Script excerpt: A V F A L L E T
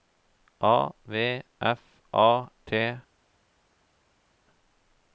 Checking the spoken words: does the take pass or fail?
fail